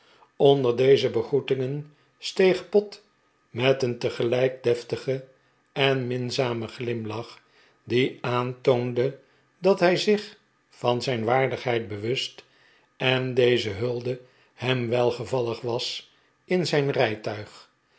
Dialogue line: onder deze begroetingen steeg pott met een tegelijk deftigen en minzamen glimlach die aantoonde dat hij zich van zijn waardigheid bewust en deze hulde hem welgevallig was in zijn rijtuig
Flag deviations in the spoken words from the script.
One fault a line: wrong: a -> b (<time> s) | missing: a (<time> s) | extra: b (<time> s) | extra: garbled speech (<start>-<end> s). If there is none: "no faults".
no faults